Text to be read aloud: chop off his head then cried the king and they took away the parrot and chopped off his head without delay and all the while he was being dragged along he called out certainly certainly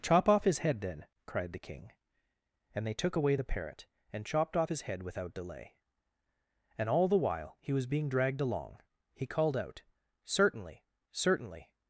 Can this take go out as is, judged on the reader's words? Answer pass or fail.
pass